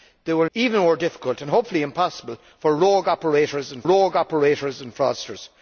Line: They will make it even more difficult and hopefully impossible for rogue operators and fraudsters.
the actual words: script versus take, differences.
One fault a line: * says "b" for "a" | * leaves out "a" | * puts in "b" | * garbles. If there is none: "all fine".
* leaves out "make it"
* puts in "rogue operators and"